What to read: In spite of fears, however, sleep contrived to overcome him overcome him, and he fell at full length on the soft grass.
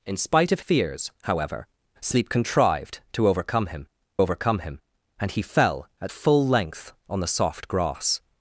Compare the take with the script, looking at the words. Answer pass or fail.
pass